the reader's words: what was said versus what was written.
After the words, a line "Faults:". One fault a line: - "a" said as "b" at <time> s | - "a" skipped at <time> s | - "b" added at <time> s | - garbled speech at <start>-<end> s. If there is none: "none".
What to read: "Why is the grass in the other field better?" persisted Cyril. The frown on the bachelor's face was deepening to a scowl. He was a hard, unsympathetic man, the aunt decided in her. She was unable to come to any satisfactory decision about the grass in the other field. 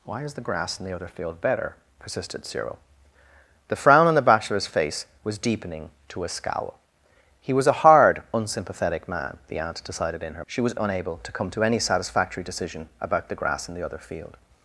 "Why is the grass in the other field better?" persisted Cyril. The frown on the bachelor's face was deepening to a scowl. He was a hard, unsympathetic man, the aunt decided in her. She was unable to come to any satisfactory decision about the grass in the other field.
Faults:
none